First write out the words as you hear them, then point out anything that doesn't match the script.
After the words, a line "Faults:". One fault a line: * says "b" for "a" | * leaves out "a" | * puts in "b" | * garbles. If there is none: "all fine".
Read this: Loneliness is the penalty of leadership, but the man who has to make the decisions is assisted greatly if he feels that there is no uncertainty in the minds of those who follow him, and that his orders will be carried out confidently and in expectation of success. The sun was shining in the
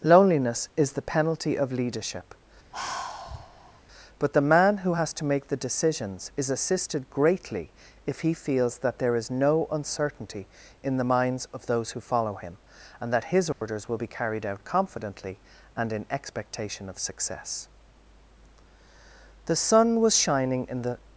Loneliness is the penalty of leadership, but the man who has to make the decisions is assisted greatly if he feels that there is no uncertainty in the minds of those who follow him, and that his orders will be carried out confidently and in expectation of success. The sun was shining in the
Faults:
all fine